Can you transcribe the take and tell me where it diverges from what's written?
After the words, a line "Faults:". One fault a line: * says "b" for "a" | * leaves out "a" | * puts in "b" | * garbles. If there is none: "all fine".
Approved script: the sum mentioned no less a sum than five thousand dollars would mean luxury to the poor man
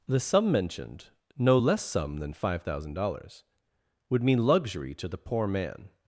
the sum mentioned no less sum than five thousand dollars would mean luxury to the poor man
Faults:
* leaves out "a"